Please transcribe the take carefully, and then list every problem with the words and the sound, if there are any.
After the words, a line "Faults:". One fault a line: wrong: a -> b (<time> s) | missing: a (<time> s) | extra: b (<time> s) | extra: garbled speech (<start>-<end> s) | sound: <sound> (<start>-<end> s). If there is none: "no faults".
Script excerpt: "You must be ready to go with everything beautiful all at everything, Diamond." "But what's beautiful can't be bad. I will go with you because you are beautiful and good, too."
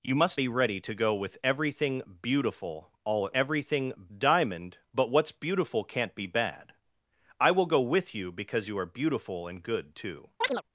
"You must be ready to go with everything beautiful all at everything, Diamond." "But what's beautiful can't be bad. I will go with you because you are beautiful and good, too."
Faults:
sound: chirp (10.4-10.6 s)